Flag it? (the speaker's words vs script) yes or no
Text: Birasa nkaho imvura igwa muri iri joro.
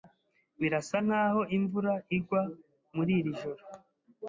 no